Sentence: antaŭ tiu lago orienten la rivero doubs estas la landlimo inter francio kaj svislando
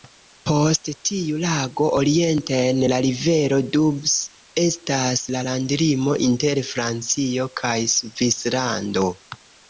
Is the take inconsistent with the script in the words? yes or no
yes